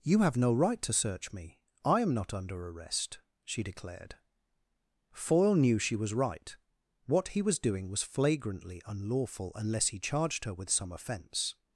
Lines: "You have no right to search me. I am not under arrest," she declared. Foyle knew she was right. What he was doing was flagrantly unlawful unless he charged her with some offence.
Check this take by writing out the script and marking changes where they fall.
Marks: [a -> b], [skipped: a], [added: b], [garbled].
"You have no right to search me. I am not under arrest," she declared. Foyle knew she was right. What he was doing was flagrantly unlawful unless he charged her with some offence.